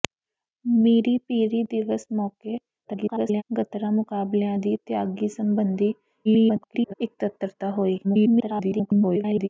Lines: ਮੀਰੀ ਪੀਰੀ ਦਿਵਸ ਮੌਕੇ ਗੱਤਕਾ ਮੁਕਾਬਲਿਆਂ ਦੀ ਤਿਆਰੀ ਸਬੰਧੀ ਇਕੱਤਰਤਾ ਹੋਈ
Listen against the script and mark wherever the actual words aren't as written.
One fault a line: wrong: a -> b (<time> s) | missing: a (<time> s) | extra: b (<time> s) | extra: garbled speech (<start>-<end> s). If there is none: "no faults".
extra: garbled speech (2.8-3.4 s)
extra: garbled speech (6.2-6.9 s)
extra: garbled speech (8.0-9.5 s)